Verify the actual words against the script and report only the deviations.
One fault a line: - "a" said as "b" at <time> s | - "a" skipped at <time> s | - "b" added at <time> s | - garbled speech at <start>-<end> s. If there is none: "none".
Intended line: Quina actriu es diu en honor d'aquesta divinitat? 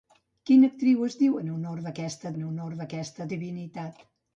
- "en honor d'aquesta" added at 2.3 s